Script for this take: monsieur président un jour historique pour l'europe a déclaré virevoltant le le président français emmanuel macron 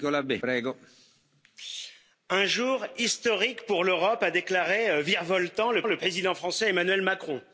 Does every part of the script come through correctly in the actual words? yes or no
yes